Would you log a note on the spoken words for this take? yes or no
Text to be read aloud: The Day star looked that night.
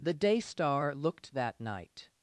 no